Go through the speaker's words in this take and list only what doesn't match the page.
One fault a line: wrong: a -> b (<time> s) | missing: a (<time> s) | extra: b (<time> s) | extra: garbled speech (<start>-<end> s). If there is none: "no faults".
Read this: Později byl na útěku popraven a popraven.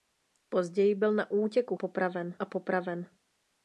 no faults